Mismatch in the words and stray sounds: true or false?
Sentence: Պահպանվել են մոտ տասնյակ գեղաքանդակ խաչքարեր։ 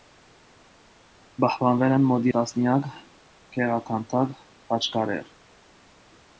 false